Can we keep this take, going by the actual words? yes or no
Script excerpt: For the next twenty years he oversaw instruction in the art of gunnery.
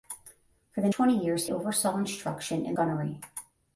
no